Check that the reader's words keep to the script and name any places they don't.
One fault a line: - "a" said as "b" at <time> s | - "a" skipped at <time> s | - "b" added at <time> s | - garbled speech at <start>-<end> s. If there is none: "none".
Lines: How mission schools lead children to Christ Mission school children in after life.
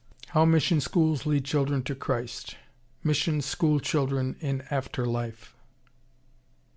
none